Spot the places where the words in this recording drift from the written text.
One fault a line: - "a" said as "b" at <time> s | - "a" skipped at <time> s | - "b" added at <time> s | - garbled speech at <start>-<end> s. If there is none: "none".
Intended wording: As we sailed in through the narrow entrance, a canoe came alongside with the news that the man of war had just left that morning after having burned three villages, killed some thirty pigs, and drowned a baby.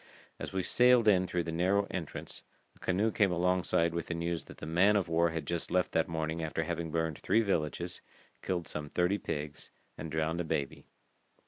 none